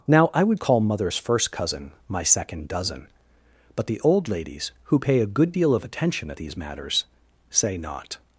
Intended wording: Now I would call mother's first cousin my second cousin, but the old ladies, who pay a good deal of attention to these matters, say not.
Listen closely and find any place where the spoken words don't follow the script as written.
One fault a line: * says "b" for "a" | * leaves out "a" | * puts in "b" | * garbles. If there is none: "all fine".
* says "dozen" for "cousin"
* says "at" for "to"